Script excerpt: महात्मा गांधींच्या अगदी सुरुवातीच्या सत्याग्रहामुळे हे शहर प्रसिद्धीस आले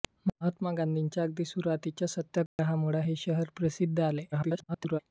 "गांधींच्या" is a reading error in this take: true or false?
false